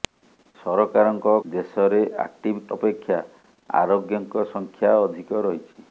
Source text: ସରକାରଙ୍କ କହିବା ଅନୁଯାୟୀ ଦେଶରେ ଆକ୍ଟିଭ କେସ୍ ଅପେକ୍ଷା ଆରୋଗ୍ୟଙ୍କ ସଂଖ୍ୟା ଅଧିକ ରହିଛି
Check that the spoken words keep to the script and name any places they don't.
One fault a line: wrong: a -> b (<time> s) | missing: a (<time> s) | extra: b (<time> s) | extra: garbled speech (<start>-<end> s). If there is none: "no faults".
missing: କହିବା ଅନୁଯାୟୀ (1.3 s)
missing: କେସ୍ (2.6 s)